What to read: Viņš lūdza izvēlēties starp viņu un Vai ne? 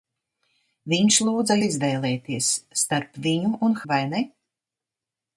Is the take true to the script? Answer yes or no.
yes